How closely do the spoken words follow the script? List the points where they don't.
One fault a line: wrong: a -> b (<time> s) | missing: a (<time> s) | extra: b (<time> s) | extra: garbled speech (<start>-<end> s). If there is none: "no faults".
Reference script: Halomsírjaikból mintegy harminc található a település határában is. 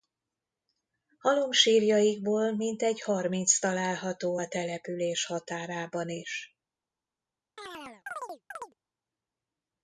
no faults